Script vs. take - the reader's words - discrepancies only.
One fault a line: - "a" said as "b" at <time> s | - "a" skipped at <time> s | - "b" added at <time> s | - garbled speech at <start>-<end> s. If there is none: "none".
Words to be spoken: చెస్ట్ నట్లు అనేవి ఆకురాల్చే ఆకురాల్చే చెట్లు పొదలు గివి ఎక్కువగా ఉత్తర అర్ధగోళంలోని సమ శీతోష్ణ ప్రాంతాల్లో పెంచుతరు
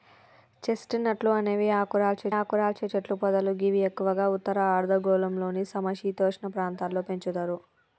none